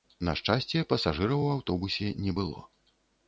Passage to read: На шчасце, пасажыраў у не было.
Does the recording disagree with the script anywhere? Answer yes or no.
yes